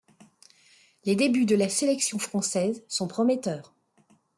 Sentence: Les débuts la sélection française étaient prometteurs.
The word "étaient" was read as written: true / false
false